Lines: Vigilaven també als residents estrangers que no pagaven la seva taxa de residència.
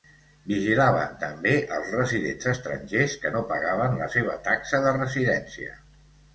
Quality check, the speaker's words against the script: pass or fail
pass